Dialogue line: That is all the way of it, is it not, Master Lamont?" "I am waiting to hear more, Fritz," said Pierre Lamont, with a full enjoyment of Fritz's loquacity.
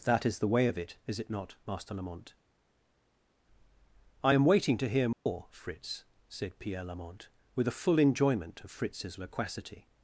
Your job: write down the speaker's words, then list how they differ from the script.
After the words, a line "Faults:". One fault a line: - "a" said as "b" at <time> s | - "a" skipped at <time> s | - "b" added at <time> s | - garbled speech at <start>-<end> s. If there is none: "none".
That is the way of it, is it not, Master Lamont?" "I am waiting to hear more, Fritz," said Pierre Lamont, with a full enjoyment of Fritz's loquacity.
Faults:
- "all" skipped at 0.4 s